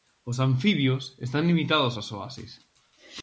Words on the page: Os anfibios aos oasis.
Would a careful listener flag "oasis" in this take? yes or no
no